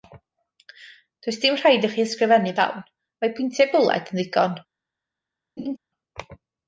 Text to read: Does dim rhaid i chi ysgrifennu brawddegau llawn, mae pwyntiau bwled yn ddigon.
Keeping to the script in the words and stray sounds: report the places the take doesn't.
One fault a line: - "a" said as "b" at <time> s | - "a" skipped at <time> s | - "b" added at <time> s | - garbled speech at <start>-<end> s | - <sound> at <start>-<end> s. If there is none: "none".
- "brawddegau" skipped at 2.5 s
- laugh at 5.6-5.8 s